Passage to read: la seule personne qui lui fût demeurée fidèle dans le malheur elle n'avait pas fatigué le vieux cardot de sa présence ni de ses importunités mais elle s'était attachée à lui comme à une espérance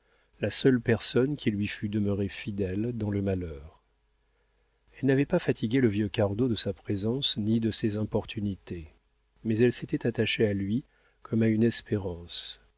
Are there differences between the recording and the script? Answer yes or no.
no